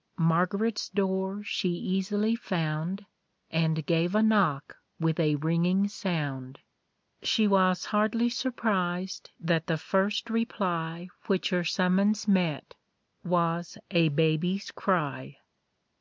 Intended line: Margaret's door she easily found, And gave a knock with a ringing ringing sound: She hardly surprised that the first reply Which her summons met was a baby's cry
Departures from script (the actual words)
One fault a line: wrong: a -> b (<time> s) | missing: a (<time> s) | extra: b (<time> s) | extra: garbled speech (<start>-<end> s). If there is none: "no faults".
missing: ringing (5.9 s)
extra: was (7.5 s)